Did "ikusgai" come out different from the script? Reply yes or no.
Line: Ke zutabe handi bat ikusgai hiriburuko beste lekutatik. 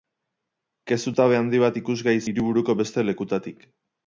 no